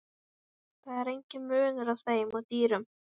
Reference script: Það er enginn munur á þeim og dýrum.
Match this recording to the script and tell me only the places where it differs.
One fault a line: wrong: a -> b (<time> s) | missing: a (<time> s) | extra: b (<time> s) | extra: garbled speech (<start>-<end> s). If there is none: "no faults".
no faults